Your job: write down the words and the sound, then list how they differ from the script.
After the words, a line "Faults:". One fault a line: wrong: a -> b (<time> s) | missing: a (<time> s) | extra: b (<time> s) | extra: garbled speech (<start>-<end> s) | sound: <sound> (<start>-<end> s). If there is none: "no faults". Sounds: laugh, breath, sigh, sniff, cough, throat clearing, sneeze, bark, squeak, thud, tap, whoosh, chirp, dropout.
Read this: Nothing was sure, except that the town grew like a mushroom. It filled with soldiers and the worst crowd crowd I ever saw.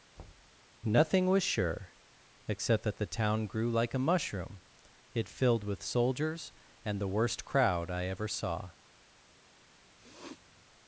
Nothing was sure, except that the town grew like a mushroom. It filled with soldiers and the worst crowd I ever saw.
Faults:
sound: thud (0.2-0.6 s)
missing: crowd (7.9 s)
sound: sniff (10.0-10.7 s)